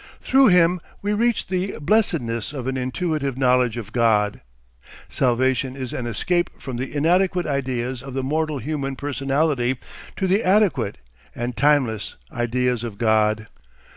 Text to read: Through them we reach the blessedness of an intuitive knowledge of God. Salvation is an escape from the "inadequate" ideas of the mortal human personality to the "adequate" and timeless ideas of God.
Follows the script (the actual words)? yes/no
no